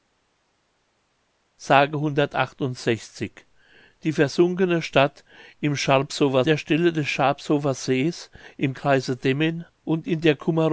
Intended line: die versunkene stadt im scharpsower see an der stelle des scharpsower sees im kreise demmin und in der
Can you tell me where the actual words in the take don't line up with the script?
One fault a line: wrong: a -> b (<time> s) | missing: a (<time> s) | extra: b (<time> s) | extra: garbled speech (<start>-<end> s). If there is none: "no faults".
missing: see an (6.4 s)